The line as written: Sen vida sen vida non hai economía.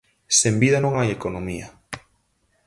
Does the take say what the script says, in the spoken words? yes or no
no